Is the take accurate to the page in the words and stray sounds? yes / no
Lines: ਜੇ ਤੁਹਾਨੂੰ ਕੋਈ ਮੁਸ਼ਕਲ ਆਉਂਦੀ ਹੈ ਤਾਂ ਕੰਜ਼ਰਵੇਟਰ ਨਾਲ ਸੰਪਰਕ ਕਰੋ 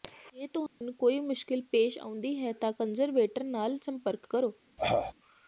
no